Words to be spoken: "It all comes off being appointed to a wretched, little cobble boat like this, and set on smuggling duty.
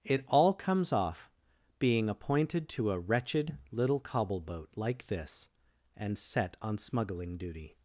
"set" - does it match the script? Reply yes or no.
yes